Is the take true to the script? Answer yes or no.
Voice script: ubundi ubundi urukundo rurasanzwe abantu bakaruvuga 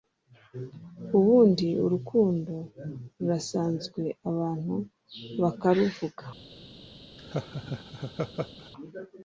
no